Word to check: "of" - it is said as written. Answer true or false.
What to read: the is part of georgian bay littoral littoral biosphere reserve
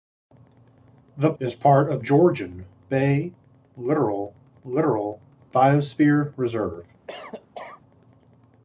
true